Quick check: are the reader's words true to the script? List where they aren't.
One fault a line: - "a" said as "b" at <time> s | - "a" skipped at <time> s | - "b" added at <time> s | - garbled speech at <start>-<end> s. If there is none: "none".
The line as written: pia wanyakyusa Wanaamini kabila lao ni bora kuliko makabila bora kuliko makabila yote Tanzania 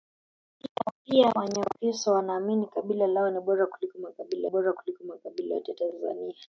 none